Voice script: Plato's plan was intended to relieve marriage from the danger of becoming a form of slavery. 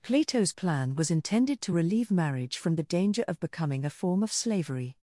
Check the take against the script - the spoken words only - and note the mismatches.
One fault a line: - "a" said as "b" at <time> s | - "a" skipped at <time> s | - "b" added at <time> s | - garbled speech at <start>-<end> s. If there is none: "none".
none